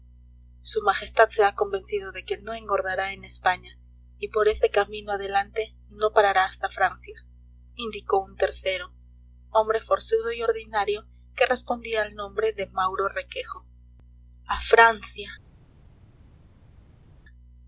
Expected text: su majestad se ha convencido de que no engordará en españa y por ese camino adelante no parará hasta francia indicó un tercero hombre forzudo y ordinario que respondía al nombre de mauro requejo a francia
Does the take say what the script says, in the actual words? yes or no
yes